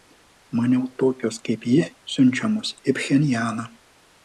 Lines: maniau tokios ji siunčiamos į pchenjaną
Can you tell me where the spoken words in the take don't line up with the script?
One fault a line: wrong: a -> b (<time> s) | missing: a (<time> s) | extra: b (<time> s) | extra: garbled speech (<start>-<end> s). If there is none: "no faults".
extra: kaip (1.5 s)